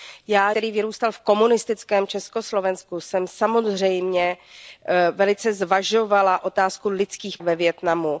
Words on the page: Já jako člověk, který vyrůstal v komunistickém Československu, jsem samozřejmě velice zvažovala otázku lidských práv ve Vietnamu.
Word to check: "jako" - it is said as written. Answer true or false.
false